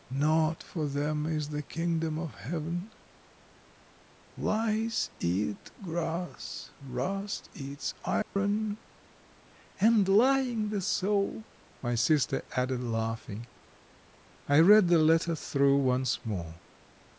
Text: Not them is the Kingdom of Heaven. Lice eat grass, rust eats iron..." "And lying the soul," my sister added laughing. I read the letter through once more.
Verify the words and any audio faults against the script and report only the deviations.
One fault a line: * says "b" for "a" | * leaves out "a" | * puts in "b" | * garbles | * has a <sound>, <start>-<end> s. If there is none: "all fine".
* puts in "for"
* has a dropout, 8.2-8.4 s